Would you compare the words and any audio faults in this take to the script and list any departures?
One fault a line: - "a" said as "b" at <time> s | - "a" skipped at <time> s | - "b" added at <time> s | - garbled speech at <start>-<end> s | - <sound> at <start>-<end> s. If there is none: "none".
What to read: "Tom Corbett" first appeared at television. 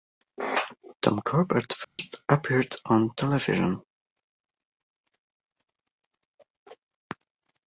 - dropout at 1.8-2.0 s
- "at" said as "on" at 2.9 s